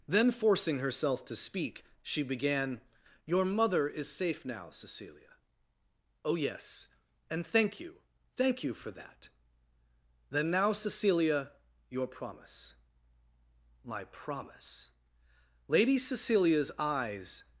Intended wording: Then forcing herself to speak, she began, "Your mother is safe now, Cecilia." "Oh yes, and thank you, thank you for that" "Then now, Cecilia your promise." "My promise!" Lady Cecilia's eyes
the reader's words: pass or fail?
pass